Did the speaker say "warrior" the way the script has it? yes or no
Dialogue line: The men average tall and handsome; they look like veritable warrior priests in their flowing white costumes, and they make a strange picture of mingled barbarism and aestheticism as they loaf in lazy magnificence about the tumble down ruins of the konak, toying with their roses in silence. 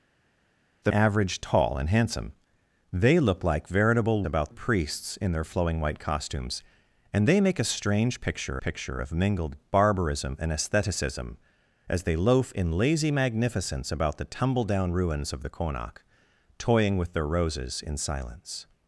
no